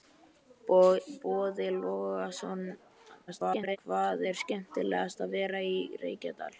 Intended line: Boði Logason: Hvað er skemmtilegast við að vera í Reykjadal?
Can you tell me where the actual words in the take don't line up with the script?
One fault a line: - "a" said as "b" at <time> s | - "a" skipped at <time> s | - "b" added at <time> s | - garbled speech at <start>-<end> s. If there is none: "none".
- garbled speech at 3.3-3.8 s